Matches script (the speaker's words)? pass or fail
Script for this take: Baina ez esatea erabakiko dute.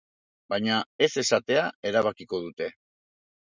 pass